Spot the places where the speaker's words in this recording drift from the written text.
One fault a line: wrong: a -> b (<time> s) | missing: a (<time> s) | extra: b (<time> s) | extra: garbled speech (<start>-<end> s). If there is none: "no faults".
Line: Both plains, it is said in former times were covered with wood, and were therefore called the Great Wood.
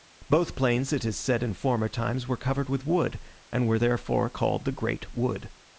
no faults